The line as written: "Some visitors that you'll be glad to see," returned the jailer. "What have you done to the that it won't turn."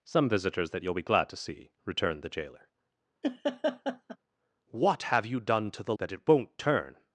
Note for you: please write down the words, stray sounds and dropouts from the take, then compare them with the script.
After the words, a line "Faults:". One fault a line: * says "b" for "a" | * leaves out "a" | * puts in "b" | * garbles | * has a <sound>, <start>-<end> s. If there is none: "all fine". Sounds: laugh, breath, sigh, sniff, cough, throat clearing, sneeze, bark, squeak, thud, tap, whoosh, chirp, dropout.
"Some visitors that you'll be glad to see," returned the jailer. "What have you done to the that it won't turn."
Faults:
* has a laugh, 3.2-4.2 s